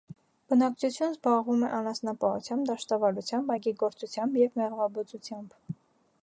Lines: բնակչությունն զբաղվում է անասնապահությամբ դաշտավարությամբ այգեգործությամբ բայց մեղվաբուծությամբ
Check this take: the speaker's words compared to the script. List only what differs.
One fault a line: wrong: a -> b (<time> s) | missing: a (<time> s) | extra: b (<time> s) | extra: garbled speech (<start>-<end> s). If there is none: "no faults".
wrong: բայց -> և (4.4 s)